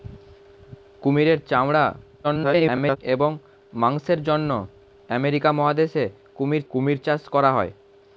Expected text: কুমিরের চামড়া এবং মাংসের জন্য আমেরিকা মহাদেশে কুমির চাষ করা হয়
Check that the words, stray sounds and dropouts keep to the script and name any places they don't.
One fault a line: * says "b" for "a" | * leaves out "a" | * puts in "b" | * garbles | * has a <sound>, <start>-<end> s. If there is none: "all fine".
* garbles
* puts in "কুমির"